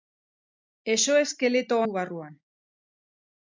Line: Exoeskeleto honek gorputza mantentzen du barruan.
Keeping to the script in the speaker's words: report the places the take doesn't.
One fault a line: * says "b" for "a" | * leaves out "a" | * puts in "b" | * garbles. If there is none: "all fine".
* leaves out "honek gorputza mantentzen"